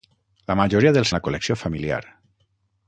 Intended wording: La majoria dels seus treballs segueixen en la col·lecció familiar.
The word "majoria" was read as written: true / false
true